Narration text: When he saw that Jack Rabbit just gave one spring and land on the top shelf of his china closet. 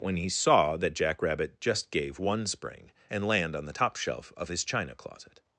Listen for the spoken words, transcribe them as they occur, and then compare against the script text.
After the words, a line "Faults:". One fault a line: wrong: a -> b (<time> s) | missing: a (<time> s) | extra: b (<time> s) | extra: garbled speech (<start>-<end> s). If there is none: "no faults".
When he saw that Jack Rabbit just gave one spring and land on the top shelf of his china closet.
Faults:
no faults